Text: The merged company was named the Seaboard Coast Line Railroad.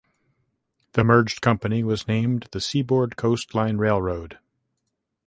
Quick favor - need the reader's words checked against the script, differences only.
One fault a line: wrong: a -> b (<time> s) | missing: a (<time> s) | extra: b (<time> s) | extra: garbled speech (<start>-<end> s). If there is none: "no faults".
no faults